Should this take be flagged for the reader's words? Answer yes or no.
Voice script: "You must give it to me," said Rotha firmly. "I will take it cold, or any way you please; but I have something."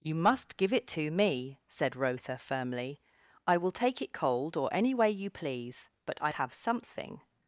no